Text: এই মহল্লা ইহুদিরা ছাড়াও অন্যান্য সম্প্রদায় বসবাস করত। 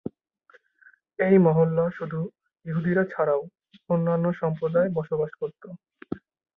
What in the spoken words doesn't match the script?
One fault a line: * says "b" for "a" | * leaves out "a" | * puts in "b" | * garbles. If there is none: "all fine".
* puts in "শুধু"